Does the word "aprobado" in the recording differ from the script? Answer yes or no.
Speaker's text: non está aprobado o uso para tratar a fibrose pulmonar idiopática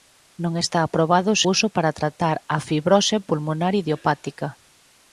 no